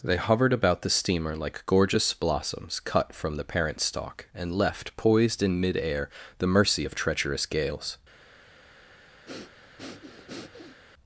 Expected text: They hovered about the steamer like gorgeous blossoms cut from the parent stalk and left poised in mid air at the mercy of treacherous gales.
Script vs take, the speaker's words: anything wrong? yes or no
yes